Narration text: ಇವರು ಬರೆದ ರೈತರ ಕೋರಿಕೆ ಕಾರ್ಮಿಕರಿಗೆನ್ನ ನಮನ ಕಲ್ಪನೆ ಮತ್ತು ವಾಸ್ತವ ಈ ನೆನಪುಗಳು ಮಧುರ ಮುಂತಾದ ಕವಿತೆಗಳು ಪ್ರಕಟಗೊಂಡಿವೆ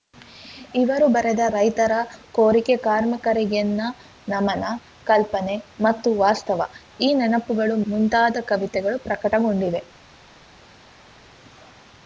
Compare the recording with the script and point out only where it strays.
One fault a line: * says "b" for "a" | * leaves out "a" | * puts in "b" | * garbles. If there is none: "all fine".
* leaves out "ಮಧುರ"